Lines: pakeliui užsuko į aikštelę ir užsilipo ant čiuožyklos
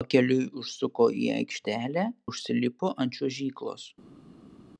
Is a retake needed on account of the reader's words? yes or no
yes